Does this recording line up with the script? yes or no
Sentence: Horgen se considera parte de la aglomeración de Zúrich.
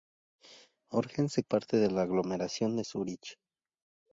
no